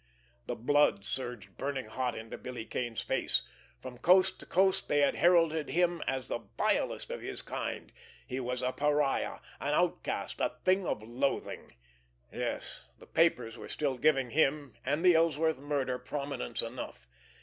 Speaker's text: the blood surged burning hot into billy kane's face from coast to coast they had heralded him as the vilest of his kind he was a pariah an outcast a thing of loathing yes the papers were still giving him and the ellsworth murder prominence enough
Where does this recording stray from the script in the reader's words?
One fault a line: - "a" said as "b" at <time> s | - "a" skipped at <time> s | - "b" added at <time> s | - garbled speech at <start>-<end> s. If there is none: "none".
none